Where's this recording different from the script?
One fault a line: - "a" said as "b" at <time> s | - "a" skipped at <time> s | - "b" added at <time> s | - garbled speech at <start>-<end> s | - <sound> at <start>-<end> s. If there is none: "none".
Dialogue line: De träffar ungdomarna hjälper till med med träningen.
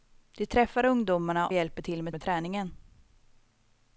none